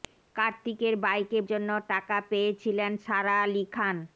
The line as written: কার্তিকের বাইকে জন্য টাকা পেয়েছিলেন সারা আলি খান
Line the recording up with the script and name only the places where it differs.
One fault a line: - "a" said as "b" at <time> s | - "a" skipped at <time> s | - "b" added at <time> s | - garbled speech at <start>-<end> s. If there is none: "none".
none